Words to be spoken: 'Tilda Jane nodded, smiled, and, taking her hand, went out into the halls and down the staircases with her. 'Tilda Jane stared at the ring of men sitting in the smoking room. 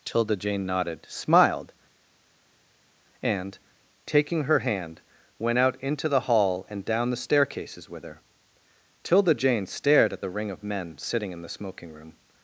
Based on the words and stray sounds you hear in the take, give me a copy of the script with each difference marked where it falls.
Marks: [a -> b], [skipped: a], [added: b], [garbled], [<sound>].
'Tilda Jane nodded, smiled, and, taking her hand, went out into the [halls -> hall] and down the staircases with her. 'Tilda Jane stared at the ring of men sitting in the smoking room.